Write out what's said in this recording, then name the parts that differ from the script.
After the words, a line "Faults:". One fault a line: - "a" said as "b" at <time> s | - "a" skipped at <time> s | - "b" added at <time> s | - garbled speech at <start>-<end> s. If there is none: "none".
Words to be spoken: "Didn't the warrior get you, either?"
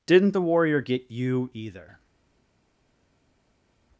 "Didn't the warrior get you, either?"
Faults:
none